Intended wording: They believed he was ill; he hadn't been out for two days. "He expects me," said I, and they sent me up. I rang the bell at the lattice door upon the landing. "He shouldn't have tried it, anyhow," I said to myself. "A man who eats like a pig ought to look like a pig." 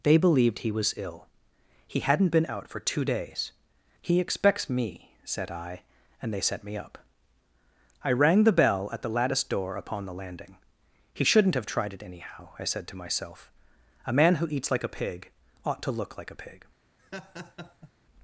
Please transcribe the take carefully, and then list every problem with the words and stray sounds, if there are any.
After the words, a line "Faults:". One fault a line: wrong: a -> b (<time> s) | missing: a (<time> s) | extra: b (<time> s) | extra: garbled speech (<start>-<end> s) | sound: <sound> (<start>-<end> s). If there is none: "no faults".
They believed he was ill; he hadn't been out for two days. "He expects me," said I, and they set me up. I rang the bell at the lattice door upon the landing. "He shouldn't have tried it, anyhow," I said to myself. "A man who eats like a pig ought to look like a pig."
Faults:
wrong: sent -> set (6.4 s)
sound: laugh (17.0-17.9 s)